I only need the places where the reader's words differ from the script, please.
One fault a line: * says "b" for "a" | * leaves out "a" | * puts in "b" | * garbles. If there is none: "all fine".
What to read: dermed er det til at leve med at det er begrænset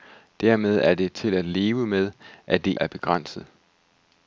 all fine